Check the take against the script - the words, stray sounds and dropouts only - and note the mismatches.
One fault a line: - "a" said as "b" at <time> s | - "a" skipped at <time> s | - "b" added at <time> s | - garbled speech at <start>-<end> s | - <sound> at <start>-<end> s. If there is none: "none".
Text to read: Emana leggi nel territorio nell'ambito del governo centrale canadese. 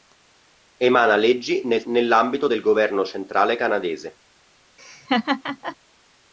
- "territorio" skipped at 1.8 s
- laugh at 4.8-5.8 s